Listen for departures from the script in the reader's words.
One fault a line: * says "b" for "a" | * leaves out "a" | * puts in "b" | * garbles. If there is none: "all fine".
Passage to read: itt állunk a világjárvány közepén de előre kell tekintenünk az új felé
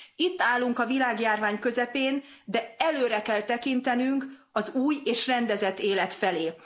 * puts in "és rendezett élet"